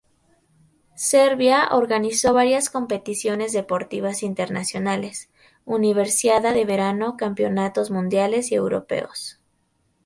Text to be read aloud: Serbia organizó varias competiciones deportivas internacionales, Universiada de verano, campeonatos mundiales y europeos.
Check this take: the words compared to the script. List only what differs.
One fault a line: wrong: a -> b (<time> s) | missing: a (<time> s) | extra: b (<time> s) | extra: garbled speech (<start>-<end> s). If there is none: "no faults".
no faults